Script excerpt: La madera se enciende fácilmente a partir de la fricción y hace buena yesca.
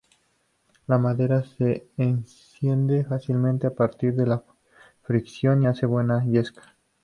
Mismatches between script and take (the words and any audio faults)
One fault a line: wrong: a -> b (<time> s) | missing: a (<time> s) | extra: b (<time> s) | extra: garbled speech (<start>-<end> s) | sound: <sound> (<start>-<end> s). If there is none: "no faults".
missing: y (5.6 s)